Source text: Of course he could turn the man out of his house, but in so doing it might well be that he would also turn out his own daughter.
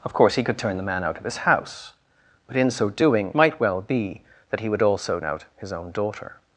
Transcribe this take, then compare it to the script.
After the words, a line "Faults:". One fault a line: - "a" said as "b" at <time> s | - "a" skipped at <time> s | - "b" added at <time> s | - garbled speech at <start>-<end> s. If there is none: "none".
Of course he could turn the man out of his house, but in so doing might well be that he would also out his own daughter.
Faults:
- "it" skipped at 3.3 s
- "turn" skipped at 5.2 s